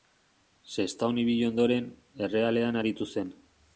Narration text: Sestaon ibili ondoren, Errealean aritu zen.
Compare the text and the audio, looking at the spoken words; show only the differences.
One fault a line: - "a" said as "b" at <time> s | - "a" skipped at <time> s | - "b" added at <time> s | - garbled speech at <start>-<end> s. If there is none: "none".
none